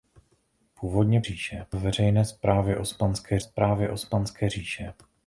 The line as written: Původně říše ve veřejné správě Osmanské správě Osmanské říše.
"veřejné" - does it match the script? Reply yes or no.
yes